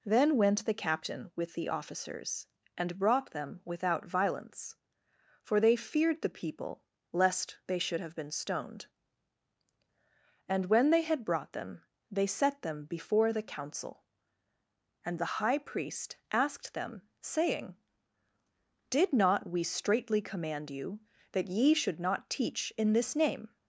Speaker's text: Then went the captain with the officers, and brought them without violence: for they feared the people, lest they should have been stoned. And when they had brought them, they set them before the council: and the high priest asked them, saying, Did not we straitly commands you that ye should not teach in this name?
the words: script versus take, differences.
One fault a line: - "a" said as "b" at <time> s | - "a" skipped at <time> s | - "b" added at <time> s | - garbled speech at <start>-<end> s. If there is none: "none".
- "commands" said as "command" at 20.2 s